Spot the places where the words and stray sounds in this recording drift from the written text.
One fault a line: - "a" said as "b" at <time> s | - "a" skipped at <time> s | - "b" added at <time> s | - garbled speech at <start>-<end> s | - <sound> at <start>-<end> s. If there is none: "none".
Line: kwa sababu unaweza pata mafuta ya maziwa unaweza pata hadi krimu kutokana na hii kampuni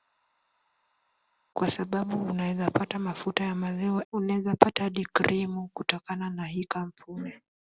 none